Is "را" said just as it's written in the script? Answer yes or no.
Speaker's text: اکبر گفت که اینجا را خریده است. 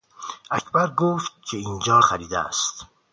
no